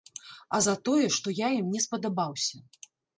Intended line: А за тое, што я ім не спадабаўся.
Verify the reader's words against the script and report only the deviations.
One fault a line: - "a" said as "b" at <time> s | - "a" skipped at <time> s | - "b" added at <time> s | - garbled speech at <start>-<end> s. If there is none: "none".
none